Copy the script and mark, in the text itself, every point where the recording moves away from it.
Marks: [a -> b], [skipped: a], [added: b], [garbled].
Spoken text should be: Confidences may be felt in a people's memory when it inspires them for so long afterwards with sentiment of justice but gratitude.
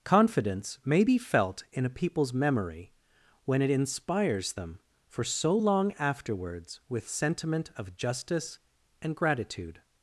[Confidences -> Confidence] may be felt in a people's memory when it inspires them for so long afterwards with sentiment of justice [but -> and] gratitude.